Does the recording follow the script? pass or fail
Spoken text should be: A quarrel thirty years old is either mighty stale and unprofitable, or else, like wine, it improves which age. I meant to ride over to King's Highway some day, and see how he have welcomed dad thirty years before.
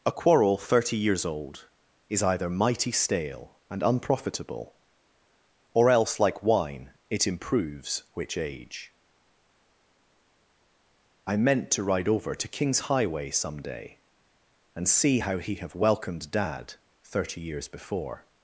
pass